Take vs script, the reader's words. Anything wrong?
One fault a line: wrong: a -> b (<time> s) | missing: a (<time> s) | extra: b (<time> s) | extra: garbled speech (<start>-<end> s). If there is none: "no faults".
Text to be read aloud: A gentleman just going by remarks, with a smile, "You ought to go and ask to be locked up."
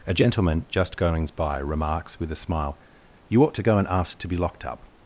wrong: going -> goings (1.0 s)